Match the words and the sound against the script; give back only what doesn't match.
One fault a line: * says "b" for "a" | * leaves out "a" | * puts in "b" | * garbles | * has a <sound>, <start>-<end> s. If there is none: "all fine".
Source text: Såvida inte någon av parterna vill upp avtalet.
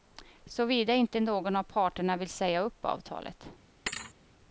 * puts in "säga"
* has a thud, 3.9-4.1 s